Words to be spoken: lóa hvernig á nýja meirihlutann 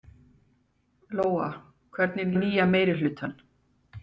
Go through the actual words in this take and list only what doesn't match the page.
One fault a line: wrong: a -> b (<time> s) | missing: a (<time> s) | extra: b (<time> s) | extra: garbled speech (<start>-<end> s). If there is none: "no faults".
no faults